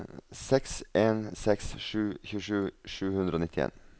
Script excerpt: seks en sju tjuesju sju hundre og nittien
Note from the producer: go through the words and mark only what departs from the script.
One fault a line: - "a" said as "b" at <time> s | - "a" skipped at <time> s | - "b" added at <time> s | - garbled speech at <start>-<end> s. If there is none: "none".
- "seks" added at 1.4 s